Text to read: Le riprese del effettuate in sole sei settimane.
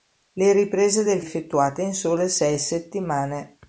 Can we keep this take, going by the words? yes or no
yes